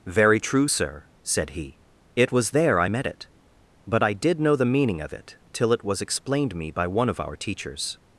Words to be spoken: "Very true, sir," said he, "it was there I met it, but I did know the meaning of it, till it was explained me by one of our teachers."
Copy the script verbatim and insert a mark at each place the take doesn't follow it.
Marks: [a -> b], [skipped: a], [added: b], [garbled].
"Very true, sir," said he, "it was there I met it, but I did know the meaning of it, till it was explained me by one of our teachers."